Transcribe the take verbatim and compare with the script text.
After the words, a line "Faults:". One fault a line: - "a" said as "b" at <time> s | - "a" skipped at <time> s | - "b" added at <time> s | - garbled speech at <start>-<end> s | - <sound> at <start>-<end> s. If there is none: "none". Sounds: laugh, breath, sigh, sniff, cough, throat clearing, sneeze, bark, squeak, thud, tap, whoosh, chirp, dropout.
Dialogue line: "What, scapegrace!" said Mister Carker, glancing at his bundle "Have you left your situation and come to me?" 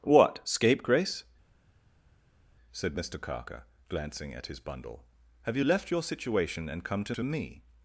"What, scapegrace!" said Mister Carker, glancing at his bundle "Have you left your situation and come to to me?"
Faults:
- "to" added at 7.1 s